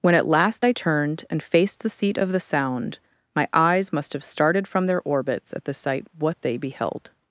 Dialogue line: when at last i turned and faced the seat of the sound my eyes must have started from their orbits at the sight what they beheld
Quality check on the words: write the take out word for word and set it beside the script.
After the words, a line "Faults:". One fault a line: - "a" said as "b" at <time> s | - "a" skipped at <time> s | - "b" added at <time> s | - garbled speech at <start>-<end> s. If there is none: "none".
when at last i turned and faced the seat of the sound my eyes must have started from their orbits at the sight what they beheld
Faults:
none